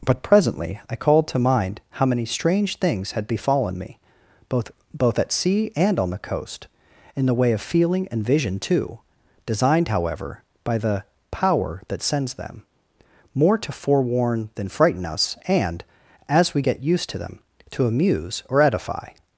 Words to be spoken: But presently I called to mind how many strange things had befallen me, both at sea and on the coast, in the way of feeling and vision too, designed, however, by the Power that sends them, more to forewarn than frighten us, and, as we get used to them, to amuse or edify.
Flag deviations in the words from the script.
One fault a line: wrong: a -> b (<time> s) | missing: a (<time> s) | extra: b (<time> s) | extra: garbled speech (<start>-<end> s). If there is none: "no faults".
extra: both (4.9 s)